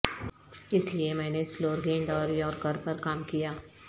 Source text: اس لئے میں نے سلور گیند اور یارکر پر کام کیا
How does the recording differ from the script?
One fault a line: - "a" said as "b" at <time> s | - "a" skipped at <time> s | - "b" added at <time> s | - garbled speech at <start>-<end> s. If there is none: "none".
none